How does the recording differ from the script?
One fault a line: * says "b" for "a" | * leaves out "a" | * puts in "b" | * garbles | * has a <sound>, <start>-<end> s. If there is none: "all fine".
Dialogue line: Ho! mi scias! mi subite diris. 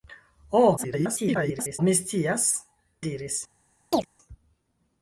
* garbles
* leaves out "mi subite"
* has a chirp, 3.9-4.1 s